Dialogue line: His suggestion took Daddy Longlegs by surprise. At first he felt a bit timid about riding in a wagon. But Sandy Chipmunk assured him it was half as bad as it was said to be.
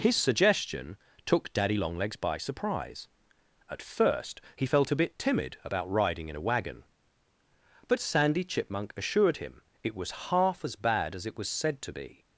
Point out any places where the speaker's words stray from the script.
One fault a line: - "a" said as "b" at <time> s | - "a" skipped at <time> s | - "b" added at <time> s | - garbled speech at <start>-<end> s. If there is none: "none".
none